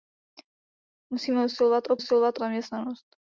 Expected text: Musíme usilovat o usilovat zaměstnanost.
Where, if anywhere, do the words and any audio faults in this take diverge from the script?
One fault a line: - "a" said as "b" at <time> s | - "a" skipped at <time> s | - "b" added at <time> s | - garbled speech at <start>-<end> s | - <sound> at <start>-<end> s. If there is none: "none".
none